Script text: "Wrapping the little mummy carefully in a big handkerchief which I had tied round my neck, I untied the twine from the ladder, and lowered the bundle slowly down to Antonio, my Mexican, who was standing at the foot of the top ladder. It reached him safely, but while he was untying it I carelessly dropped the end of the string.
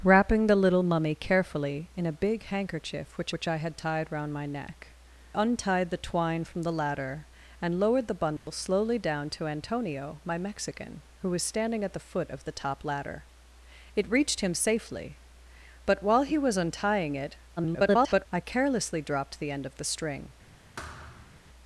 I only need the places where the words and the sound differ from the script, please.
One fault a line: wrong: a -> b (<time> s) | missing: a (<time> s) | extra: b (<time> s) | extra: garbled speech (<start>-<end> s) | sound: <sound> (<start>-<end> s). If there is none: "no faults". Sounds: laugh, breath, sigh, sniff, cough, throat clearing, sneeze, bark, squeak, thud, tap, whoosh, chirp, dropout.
extra: which (3.3 s)
missing: I (4.9 s)
sound: dropout (8.4-8.5 s)
extra: garbled speech (17.6-18.3 s)
sound: thud (20.8-21.4 s)